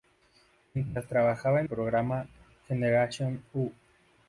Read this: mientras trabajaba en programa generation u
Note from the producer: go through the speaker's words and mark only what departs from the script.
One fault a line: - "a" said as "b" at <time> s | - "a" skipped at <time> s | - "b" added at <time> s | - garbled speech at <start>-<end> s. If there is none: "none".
none